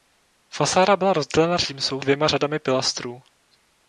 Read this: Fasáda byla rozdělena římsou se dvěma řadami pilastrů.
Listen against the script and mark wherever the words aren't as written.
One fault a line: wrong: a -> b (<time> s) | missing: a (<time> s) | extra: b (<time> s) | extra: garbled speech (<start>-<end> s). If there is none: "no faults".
missing: se (2.0 s)